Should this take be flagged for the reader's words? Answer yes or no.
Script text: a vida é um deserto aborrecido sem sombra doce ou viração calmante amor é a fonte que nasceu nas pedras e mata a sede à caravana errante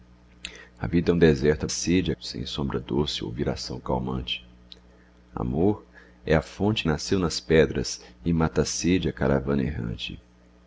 yes